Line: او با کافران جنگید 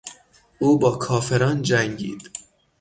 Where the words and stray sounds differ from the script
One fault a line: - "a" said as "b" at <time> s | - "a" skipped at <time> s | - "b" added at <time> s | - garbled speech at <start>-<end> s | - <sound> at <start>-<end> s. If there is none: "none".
none